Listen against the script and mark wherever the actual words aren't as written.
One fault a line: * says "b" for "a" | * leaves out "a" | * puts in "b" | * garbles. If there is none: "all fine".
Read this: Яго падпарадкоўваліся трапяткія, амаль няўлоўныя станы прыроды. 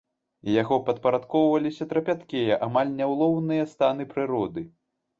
all fine